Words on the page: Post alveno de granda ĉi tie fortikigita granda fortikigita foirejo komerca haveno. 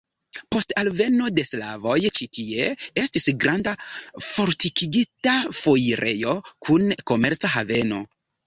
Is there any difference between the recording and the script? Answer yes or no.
yes